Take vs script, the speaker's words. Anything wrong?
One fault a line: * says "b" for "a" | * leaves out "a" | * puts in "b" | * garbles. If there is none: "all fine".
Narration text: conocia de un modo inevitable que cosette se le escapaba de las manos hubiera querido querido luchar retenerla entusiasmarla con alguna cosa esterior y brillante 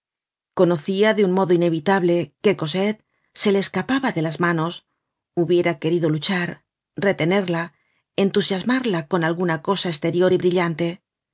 * leaves out "querido"